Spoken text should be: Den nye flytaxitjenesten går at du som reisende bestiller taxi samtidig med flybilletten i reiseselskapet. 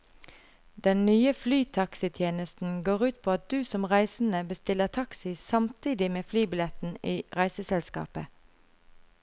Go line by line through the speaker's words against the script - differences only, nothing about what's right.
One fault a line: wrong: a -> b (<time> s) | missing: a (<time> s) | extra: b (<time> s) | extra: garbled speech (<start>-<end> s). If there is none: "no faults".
extra: ut på (3.1 s)